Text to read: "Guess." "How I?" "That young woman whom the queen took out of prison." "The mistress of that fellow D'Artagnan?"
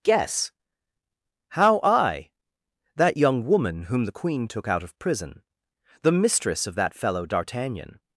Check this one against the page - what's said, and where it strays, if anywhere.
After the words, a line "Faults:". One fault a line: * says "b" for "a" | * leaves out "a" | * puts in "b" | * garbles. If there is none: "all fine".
"Guess." "How I?" "That young woman whom the queen took out of prison." "The mistress of that fellow D'Artagnan?"
Faults:
all fine